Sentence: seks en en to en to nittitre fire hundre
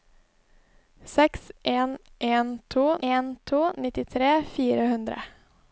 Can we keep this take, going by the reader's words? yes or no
yes